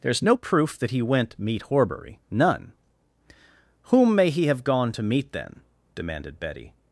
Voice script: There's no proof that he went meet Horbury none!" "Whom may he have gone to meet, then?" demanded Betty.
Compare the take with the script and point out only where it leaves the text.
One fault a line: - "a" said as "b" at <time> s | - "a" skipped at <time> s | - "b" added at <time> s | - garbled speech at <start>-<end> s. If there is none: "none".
none